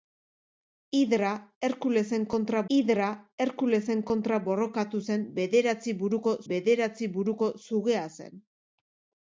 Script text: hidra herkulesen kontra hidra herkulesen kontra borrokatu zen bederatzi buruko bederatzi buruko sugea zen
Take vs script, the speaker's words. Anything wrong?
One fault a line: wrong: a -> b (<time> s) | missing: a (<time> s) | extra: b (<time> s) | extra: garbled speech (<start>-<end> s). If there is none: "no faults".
no faults